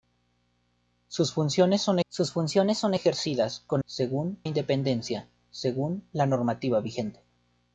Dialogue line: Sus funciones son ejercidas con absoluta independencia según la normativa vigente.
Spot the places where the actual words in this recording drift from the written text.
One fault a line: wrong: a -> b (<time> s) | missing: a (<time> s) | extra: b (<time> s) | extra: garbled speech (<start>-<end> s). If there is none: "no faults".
extra: sus funciones son (2.1 s)
wrong: absoluta -> según (3.8 s)